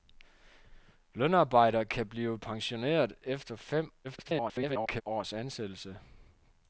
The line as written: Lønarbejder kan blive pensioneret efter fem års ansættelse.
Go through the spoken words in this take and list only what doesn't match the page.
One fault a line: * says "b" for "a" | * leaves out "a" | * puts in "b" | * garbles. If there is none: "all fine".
* garbles